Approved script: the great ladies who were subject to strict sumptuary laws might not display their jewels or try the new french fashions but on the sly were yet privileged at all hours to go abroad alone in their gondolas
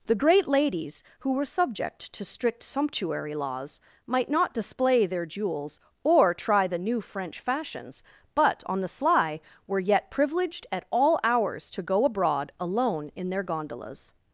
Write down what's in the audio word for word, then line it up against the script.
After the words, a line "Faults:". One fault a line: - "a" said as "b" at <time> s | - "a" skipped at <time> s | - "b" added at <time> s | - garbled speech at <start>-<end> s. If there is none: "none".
the great ladies who were subject to strict sumptuary laws might not display their jewels or try the new french fashions but on the sly were yet privileged at all hours to go abroad alone in their gondolas
Faults:
none